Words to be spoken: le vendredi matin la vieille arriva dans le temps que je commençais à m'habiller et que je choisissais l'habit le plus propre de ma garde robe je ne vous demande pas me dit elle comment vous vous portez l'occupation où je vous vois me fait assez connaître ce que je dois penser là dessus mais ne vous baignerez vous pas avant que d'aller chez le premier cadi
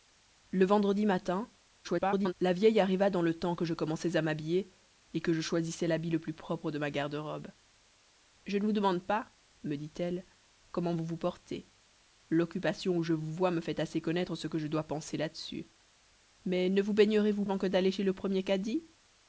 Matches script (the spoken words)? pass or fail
fail